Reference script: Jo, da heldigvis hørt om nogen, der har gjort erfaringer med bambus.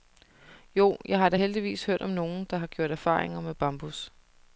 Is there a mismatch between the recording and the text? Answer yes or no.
yes